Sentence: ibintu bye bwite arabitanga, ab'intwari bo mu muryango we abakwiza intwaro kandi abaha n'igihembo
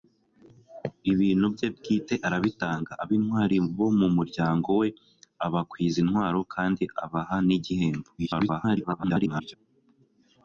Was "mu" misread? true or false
false